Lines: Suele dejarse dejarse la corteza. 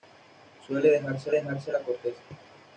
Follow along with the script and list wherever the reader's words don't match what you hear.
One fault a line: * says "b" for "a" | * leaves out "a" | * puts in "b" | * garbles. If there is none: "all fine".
all fine